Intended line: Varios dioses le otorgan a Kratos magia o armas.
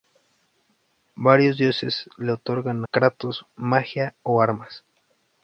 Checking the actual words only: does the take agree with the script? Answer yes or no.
no